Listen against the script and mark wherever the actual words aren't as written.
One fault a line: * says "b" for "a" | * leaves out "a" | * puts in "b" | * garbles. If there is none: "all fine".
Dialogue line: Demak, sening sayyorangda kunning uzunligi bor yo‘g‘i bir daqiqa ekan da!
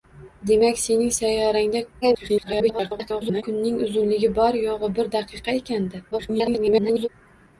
* garbles
* garbles